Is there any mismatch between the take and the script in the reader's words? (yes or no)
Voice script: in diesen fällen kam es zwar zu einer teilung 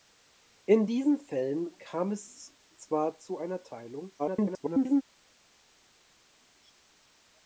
yes